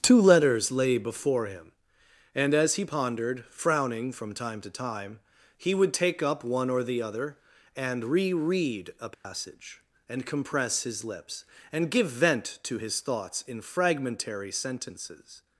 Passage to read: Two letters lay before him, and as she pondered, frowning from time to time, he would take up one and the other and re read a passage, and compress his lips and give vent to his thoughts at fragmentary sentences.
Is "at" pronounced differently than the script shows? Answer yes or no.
yes